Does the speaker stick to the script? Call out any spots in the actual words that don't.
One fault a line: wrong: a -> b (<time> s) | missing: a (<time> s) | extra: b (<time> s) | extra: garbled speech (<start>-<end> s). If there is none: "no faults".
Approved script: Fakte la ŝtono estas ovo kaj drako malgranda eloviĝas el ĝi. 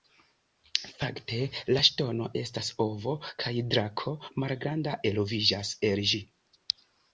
no faults